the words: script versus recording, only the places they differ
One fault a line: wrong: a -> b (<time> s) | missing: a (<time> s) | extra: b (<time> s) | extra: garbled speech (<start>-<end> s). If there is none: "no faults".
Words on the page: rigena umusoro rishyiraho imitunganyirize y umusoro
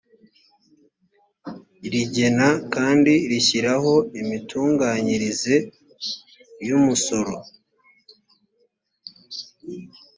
wrong: umusoro -> kandi (2.7 s)